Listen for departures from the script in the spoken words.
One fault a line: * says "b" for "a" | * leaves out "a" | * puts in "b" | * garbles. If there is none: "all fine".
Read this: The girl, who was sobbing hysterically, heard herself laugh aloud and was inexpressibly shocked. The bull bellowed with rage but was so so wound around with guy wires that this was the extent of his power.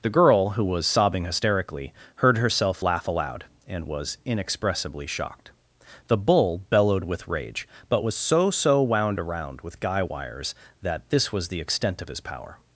all fine